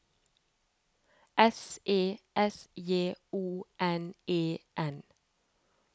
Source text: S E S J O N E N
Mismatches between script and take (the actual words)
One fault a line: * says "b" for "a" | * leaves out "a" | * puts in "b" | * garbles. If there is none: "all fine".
all fine